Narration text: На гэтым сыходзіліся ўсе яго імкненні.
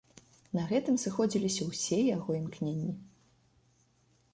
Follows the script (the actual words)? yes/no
yes